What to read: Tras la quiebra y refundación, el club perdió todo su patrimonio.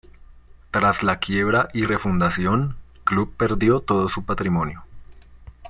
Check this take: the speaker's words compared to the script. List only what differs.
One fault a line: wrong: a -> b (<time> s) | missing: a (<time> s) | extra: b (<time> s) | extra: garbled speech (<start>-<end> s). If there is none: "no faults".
missing: el (2.8 s)